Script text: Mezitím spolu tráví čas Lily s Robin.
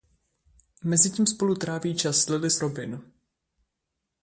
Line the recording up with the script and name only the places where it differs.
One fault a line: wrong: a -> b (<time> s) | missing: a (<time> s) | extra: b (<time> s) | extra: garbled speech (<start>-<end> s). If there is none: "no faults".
no faults